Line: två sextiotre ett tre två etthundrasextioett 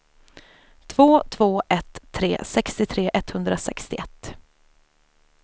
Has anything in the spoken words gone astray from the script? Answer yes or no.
yes